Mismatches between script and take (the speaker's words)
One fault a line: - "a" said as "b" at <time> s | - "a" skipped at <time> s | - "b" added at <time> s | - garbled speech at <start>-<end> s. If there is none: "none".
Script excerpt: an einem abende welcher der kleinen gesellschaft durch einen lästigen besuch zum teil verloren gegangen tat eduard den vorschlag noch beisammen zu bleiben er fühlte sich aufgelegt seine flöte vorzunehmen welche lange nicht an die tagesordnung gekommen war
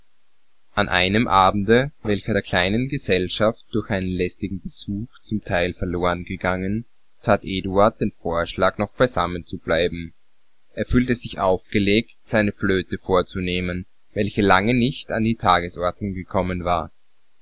none